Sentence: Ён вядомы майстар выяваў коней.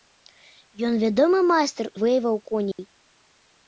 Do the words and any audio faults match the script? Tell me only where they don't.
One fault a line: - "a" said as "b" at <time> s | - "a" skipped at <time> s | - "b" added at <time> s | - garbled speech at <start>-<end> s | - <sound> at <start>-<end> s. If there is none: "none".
- dropout at 2.7-2.8 s